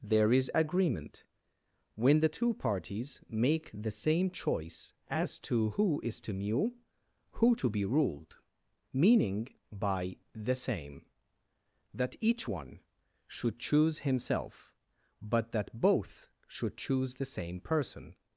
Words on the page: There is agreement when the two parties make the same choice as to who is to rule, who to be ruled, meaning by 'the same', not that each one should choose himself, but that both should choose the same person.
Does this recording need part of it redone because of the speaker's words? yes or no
yes